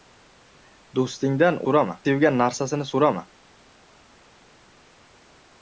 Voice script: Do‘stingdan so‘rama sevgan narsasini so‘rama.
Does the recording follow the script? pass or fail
pass